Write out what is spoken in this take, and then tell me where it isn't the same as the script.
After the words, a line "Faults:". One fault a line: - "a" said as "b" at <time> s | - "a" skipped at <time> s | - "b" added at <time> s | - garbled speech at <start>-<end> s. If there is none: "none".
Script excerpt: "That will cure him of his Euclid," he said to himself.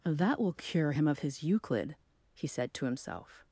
"That will cure him of his Euclid," he said to himself.
Faults:
none